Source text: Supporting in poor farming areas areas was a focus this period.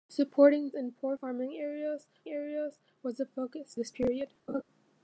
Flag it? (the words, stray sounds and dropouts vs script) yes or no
yes